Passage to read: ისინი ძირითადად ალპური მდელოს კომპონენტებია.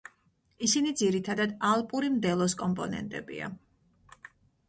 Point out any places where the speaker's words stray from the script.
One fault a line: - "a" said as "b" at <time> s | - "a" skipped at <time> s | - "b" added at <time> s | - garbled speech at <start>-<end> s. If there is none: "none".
none